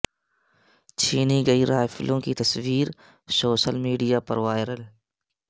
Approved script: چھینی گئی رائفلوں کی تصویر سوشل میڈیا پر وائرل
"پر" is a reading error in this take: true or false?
false